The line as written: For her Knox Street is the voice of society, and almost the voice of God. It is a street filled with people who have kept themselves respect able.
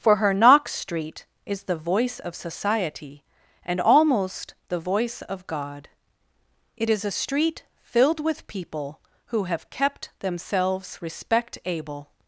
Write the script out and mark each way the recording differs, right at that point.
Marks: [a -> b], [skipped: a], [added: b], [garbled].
For her Knox Street is the voice of society, and almost the voice of God. It is a street filled with people who have kept themselves respect able.